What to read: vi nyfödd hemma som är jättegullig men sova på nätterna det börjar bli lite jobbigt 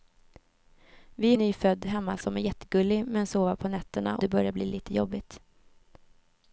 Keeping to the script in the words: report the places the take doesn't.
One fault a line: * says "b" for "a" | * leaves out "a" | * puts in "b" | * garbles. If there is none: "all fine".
all fine